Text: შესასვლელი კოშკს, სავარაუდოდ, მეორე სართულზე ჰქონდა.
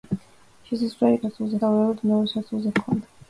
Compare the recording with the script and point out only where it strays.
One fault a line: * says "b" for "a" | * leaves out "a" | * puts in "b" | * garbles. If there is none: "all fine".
* says "სართულზე" for "კოშკს"